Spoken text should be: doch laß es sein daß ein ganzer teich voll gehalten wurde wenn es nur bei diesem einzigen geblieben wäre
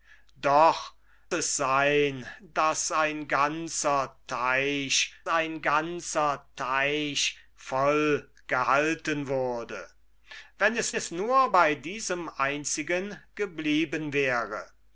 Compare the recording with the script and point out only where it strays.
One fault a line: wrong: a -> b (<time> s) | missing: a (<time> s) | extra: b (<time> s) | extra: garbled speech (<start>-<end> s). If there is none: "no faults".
missing: laß (0.9 s)
extra: ein ganzer teich (5.3 s)
extra: es (10.9 s)